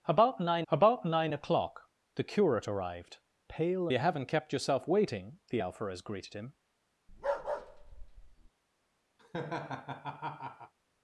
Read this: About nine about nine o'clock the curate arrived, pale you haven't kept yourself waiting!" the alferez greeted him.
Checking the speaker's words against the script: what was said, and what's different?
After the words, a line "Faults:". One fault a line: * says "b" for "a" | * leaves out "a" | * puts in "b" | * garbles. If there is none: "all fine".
About nine about nine o'clock the curate arrived, pale you haven't kept yourself waiting!" the alferez greeted him.
Faults:
all fine